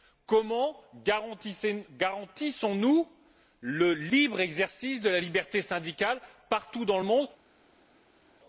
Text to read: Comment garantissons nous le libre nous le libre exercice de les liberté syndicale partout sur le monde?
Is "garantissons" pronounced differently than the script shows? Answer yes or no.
no